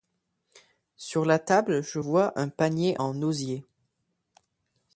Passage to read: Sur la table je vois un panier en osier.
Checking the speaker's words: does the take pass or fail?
pass